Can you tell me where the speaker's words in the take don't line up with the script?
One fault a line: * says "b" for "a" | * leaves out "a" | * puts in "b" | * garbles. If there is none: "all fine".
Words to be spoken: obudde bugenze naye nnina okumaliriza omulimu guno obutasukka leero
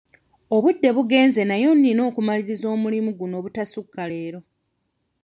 all fine